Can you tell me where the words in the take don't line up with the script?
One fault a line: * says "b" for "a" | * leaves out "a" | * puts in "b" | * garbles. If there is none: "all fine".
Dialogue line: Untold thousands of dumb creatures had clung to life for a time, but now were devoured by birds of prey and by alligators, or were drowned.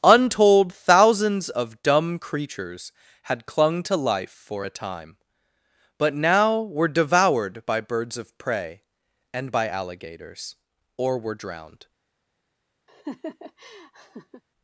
all fine